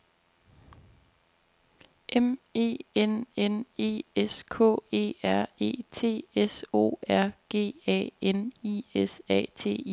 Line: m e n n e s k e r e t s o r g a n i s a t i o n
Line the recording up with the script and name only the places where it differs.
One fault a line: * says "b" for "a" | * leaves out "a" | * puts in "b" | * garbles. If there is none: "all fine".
all fine